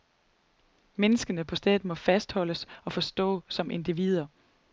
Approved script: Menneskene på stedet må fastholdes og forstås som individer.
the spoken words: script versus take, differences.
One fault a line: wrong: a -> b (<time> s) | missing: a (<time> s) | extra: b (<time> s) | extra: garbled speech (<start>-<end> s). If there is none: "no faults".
no faults